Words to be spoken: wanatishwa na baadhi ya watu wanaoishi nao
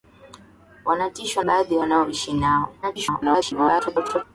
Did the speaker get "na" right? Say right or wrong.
wrong